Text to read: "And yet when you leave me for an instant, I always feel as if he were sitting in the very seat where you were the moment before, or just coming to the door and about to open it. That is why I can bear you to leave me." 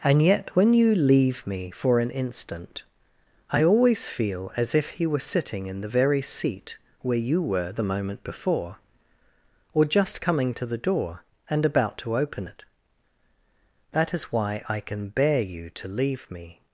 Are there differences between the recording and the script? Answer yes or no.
no